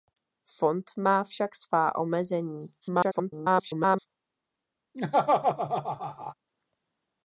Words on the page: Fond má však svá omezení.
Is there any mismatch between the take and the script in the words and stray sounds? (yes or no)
yes